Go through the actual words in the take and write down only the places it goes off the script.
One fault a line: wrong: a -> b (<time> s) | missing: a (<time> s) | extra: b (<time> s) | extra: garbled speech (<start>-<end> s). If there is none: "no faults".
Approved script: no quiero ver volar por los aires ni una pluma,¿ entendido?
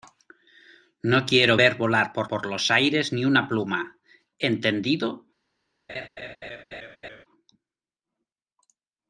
extra: por (2.3 s)